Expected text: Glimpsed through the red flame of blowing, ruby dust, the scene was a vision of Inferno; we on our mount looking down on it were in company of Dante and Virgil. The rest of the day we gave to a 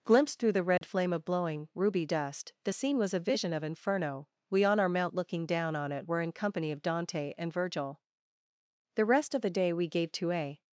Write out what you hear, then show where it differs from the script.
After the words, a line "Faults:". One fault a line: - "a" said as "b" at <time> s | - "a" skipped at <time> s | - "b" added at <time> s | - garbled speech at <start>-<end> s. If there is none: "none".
Glimpsed through the red flame of blowing, ruby dust, the scene was a vision of Inferno; we on our mount looking down on it were in company of Dante and Virgil. The rest of the day we gave to a
Faults:
none